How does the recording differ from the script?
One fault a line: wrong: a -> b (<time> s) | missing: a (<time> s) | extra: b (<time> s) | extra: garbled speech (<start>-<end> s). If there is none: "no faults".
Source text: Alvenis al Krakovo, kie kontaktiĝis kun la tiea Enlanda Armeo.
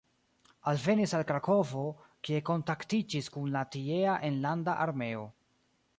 no faults